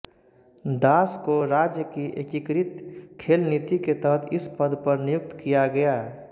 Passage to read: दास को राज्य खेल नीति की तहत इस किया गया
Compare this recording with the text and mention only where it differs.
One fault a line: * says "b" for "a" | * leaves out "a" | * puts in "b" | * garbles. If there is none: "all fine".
* puts in "की एकीकृत"
* says "के" for "की"
* puts in "पद पर नियुक्त"